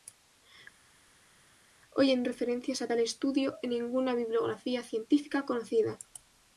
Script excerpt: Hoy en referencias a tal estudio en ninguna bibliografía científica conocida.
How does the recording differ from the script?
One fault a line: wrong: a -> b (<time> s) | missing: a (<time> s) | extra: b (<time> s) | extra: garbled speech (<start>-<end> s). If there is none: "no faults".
no faults